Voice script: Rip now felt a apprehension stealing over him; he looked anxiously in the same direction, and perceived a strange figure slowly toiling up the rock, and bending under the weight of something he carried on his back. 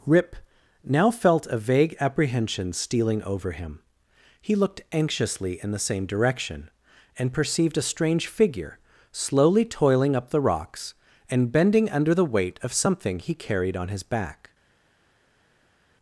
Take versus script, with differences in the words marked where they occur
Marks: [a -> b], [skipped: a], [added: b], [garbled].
Rip now felt a [added: vague] apprehension stealing over him; he looked anxiously in the same direction, and perceived a strange figure slowly toiling up the [rock, -> rocks] and bending under the weight of something he carried on his back.